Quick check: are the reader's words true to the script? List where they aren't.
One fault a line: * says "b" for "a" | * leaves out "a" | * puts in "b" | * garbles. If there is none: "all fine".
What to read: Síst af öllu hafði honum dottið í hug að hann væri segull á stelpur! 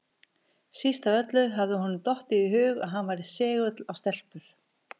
all fine